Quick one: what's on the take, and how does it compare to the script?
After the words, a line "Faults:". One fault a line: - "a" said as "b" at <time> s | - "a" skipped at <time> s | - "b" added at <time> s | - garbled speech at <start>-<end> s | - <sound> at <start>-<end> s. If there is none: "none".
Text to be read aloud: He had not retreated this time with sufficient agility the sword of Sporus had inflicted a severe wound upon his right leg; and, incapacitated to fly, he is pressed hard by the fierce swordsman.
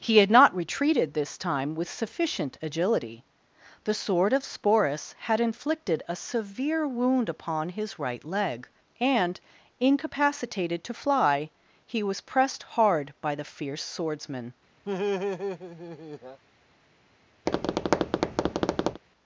He had not retreated this time with sufficient agility the sword of Sporus had inflicted a severe wound upon his right leg; and, incapacitated to fly, he was pressed hard by the fierce swordsman.
Faults:
- "is" said as "was" at 12.0 s
- laugh at 14.8-16.4 s
- tap at 17.5-19.0 s